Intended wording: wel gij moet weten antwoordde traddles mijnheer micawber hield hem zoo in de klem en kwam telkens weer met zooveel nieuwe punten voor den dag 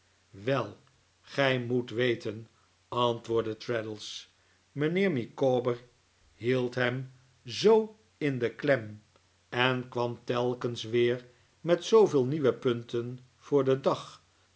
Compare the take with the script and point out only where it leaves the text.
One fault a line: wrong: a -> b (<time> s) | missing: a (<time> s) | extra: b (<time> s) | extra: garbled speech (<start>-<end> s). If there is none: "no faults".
no faults